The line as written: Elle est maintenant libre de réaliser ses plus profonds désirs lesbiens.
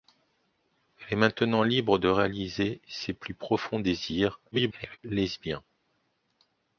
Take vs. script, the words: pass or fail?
fail